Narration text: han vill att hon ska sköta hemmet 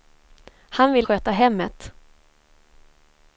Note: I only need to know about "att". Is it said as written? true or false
false